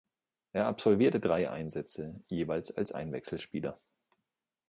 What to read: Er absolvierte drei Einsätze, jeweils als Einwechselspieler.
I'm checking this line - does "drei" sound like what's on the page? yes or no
yes